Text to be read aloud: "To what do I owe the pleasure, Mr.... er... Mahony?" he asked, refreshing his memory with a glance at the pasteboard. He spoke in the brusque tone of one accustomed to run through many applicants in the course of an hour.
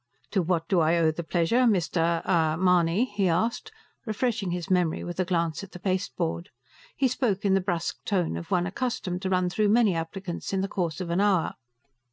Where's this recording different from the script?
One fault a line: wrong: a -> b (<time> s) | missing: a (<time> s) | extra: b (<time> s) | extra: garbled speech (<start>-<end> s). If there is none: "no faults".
no faults